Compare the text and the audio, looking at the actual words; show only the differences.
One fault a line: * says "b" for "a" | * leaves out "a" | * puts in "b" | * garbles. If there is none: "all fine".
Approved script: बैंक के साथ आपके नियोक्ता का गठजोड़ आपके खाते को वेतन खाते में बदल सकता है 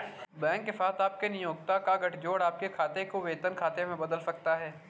all fine